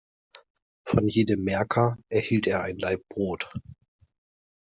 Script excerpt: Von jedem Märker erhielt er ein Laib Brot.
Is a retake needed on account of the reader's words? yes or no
no